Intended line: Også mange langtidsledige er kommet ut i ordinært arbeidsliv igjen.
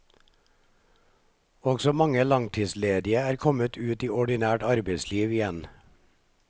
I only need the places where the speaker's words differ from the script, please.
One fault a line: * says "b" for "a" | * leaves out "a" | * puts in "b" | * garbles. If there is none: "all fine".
all fine